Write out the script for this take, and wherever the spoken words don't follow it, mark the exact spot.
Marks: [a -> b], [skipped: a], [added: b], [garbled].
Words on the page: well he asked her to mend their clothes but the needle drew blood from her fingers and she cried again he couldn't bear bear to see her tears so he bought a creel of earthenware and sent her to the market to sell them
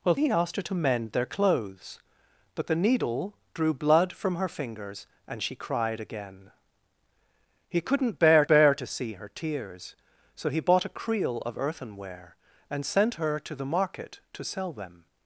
well he asked her to mend their clothes but the needle drew blood from her fingers and she cried again he couldn't bear bear to see her tears so he bought a creel of earthenware and sent her to the market to sell them